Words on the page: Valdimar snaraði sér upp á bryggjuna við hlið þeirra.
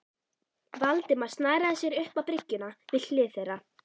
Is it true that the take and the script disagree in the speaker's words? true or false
false